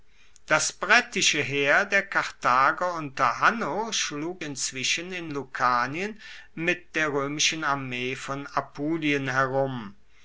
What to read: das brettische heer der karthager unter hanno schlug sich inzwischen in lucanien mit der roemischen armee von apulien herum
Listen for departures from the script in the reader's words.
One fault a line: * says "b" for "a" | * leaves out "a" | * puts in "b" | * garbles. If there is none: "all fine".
* leaves out "sich"